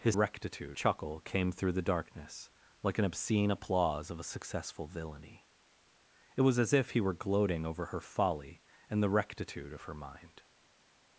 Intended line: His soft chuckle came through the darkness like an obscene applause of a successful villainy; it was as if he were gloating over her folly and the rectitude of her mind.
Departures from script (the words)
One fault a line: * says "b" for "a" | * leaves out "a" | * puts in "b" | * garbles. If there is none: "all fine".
* says "rectitude" for "soft"